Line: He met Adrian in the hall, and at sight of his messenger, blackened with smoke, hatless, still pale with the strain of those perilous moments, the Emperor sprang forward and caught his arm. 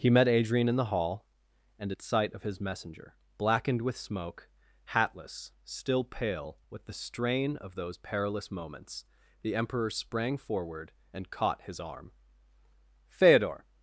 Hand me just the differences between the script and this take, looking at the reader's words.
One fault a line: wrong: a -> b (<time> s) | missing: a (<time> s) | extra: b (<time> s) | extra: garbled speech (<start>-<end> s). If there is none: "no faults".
extra: Feodor (13.1 s)